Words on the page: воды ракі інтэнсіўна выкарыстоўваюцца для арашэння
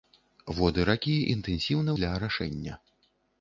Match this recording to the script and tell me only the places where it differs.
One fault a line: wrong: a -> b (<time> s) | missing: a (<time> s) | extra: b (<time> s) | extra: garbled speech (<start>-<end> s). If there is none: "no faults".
missing: выкарыстоўваюцца (1.9 s)